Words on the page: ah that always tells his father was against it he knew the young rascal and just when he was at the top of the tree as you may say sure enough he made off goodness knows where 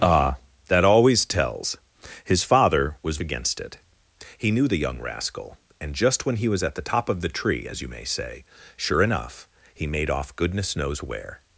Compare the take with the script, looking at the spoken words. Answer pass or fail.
pass